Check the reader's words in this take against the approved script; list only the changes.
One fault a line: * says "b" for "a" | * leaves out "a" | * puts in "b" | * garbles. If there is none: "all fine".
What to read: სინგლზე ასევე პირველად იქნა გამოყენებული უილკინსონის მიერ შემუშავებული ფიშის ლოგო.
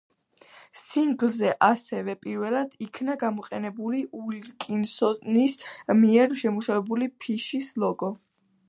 all fine